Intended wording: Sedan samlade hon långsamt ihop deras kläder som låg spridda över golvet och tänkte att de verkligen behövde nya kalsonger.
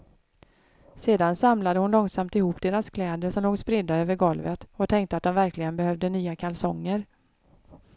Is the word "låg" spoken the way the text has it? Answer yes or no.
yes